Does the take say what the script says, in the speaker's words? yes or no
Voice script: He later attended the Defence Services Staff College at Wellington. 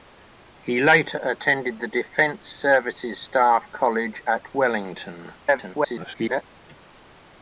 no